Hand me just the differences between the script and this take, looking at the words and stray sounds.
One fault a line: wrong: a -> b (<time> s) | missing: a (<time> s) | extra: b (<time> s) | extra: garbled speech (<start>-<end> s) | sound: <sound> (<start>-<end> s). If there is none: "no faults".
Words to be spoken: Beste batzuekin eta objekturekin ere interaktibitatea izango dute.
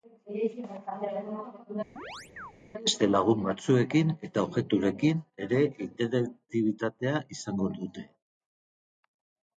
sound: chirp (2.0-2.5 s)
extra: lagun (3.1 s)